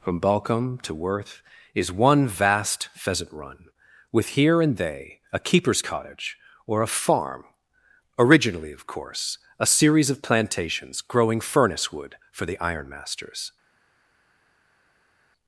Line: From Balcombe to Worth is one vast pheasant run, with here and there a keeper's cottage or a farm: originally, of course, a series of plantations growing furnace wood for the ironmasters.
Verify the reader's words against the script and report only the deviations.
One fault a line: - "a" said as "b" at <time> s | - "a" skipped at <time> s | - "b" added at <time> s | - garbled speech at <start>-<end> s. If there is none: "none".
- "there" said as "they" at 4.8 s